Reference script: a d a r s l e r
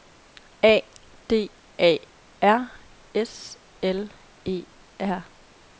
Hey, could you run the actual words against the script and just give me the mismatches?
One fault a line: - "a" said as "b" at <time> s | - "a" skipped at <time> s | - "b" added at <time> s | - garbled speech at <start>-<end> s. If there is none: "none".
none